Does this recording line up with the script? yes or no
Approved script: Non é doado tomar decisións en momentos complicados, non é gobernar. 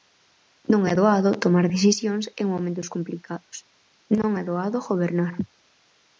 no